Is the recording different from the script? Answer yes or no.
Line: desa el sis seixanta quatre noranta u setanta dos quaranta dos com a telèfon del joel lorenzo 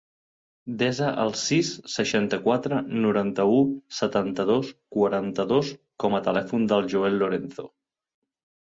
no